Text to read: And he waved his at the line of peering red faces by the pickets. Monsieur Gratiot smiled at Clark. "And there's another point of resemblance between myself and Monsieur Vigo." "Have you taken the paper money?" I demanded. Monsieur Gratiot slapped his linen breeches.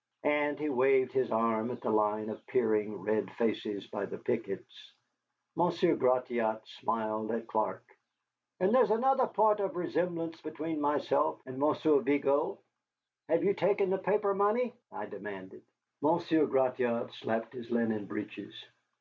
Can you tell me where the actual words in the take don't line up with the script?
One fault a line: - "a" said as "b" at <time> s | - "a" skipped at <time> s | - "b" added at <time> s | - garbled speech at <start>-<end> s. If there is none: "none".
- "arm" added at 1.3 s